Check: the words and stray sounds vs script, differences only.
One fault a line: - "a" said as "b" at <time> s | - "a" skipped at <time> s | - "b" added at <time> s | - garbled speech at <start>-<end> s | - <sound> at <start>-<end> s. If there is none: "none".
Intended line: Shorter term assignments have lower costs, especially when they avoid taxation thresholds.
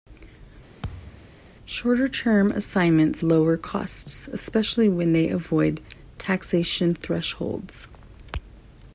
- thud at 0.8-1.4 s
- "have" skipped at 3.2 s